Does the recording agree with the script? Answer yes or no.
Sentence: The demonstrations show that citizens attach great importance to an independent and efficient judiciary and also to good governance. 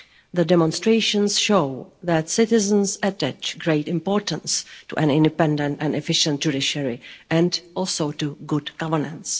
yes